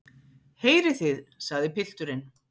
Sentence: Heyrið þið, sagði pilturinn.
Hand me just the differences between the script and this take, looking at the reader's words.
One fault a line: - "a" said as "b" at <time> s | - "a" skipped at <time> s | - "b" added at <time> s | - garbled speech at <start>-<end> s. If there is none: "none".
none